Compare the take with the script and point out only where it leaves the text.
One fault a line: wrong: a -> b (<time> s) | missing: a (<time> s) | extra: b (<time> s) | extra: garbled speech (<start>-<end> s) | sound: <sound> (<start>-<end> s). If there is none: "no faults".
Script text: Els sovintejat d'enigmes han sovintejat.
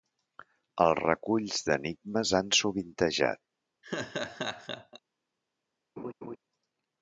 wrong: sovintejat -> reculls (1.0 s)
sound: laugh (3.8-5.0 s)
sound: laugh (6.0-6.4 s)